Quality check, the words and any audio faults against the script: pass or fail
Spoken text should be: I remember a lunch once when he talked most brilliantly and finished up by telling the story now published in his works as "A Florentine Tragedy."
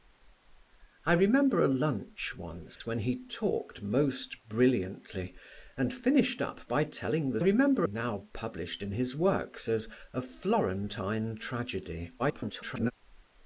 fail